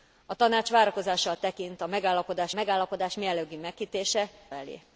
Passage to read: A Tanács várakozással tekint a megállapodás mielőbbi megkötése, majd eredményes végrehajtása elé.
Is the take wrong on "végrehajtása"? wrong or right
wrong